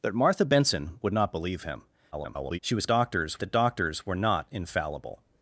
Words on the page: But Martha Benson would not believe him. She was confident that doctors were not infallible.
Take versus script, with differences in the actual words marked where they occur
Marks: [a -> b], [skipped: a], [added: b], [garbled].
But Martha Benson would not believe him. [garbled] She was [confident -> doctors] that doctors were not infallible.